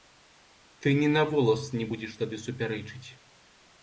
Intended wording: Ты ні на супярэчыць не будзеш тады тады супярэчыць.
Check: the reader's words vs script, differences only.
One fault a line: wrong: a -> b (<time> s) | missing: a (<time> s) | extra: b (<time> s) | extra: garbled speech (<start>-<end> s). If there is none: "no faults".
wrong: супярэчыць -> волас (1.3 s)
missing: тады (2.4 s)